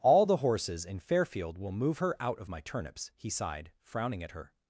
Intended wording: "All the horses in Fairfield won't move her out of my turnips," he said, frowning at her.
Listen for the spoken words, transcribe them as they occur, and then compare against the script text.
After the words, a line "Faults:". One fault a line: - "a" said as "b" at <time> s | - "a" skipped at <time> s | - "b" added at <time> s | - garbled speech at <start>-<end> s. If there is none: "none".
"All the horses in Fairfield will move her out of my turnips," he sighed, frowning at her.
Faults:
- "won't" said as "will" at 1.6 s
- "said" said as "sighed" at 3.3 s